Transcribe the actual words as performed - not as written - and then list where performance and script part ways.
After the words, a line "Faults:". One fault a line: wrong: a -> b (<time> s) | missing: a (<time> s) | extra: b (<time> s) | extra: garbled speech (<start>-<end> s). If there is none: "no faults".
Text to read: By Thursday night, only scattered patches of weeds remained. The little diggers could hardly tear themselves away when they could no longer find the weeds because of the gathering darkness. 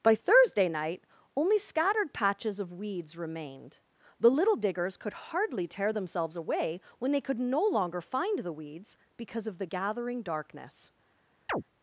By Thursday night, only scattered patches of weeds remained. The little diggers could hardly tear themselves away when they could no longer find the weeds because of the gathering darkness.
Faults:
no faults